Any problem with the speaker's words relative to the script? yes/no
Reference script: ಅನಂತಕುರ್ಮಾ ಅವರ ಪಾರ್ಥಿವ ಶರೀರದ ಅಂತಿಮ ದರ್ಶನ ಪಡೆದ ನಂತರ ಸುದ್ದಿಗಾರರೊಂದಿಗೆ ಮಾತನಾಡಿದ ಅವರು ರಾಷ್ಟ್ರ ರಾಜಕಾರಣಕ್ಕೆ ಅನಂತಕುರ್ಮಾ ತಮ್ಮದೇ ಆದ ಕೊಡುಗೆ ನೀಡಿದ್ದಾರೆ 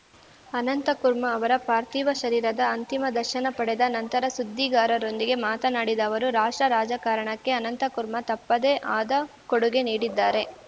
no